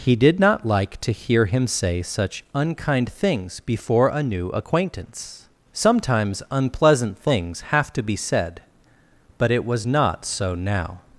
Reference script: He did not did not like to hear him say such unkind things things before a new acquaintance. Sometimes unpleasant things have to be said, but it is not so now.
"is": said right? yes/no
no